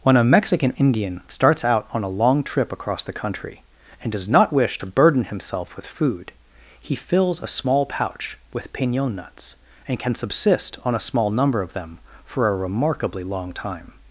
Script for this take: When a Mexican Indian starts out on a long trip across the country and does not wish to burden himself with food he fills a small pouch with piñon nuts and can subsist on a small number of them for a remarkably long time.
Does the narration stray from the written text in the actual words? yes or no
no